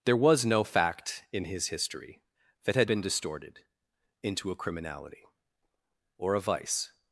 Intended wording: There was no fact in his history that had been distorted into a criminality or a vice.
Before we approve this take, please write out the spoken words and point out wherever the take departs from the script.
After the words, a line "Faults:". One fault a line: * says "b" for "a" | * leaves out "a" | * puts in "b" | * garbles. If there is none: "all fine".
There was no fact in his history that had been distorted into a criminality or a vice.
Faults:
all fine